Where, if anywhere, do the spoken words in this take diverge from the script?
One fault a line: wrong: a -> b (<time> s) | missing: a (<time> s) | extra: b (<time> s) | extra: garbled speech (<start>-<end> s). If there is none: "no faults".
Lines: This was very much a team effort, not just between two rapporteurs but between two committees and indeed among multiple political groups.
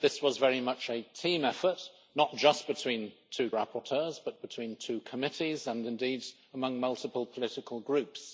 no faults